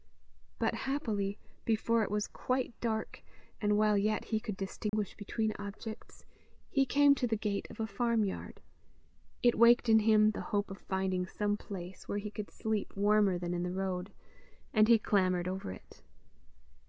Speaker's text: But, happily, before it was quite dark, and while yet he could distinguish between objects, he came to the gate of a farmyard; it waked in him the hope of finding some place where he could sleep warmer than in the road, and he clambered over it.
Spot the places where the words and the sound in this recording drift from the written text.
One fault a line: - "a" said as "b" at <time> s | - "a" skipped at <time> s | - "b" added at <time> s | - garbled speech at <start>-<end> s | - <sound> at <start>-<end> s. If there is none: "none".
- dropout at 4.9-4.9 s